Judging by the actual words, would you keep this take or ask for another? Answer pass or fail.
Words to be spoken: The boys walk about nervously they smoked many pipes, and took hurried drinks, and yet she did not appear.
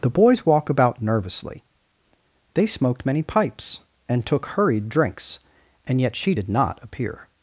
pass